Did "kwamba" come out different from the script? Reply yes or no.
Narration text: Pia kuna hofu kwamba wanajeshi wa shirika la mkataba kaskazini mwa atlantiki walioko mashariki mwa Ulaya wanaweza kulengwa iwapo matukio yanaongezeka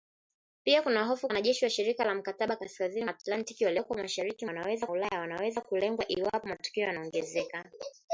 yes